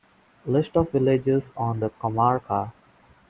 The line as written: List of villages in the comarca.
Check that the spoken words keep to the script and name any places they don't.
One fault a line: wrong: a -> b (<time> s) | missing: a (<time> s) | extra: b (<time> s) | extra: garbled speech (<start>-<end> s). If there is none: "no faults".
wrong: in -> on (1.6 s)